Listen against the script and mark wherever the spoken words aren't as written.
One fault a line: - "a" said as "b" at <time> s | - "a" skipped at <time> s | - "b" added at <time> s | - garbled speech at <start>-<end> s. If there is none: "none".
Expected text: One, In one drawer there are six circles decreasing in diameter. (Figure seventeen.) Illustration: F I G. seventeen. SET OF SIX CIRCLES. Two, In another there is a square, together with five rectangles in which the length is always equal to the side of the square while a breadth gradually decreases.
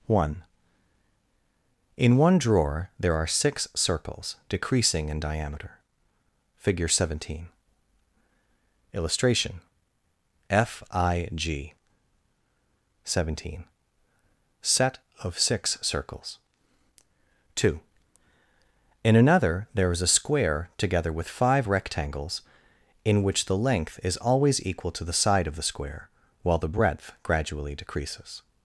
- "a" said as "the" at 26.6 s